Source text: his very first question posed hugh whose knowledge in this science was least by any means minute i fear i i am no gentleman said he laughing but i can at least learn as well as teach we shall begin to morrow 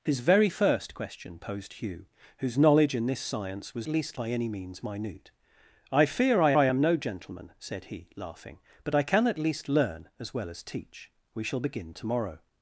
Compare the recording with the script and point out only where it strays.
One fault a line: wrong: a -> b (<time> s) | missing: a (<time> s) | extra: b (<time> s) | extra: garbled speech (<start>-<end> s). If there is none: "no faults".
no faults